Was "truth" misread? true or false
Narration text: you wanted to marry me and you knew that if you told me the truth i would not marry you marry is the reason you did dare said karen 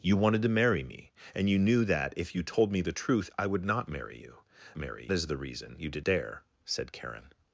false